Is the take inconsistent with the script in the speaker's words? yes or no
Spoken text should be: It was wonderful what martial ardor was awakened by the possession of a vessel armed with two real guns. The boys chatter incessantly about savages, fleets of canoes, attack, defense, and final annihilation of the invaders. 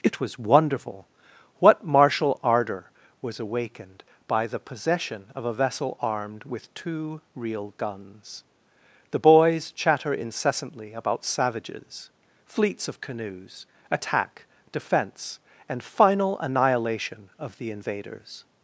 no